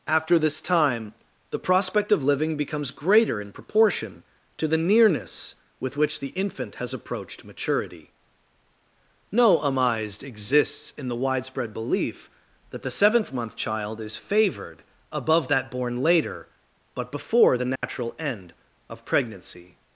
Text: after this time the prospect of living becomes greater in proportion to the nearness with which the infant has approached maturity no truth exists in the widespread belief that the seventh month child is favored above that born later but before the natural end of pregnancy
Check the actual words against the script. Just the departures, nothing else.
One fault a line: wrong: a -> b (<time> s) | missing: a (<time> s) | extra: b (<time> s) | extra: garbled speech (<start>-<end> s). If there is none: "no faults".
wrong: truth -> amized (9.6 s)